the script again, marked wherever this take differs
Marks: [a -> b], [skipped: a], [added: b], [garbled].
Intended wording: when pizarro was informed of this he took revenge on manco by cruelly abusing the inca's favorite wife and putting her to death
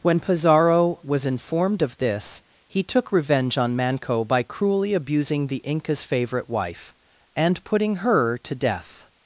when pizarro was informed of this he took revenge on manco by cruelly abusing the inca's favorite wife and putting her to death